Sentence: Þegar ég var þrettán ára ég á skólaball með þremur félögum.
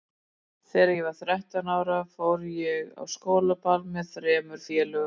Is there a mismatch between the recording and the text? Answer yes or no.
yes